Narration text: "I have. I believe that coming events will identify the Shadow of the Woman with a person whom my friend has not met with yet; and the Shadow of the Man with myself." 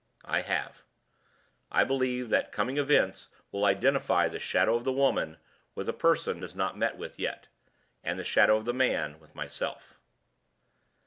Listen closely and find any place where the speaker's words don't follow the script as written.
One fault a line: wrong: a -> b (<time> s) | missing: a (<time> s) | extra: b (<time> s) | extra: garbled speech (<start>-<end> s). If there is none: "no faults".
missing: whom my friend (6.4 s)